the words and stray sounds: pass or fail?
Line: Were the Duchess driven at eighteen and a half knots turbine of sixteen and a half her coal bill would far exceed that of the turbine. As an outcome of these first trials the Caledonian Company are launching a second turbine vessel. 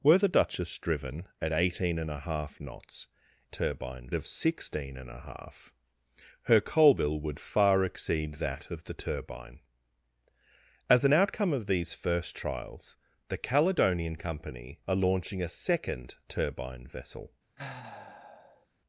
fail